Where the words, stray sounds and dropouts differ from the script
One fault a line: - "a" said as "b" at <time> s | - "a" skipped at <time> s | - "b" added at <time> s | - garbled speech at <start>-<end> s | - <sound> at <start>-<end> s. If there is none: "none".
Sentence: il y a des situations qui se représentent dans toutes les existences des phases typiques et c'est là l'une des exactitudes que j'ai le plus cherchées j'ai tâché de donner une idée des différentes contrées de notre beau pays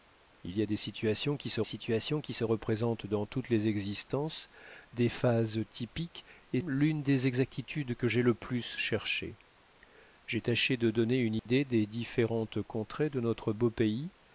- "situations qui se" added at 1.6 s
- "c'est là" skipped at 6.6 s
- dropout at 11.4-11.5 s